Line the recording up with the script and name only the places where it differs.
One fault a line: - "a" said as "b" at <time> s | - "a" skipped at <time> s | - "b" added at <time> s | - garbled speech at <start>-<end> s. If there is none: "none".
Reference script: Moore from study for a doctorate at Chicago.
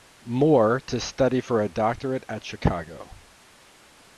- "from" said as "to" at 0.8 s